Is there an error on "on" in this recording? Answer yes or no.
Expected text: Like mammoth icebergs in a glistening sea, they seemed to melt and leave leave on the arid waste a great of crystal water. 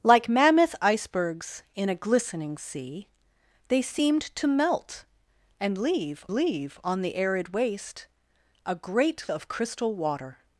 no